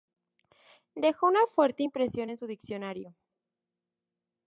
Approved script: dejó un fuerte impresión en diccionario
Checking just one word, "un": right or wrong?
wrong